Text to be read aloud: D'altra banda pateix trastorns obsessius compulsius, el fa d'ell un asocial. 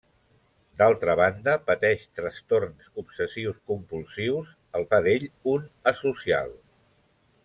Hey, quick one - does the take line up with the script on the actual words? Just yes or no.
yes